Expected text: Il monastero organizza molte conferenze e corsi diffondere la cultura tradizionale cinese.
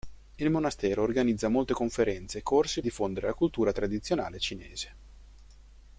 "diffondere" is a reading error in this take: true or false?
false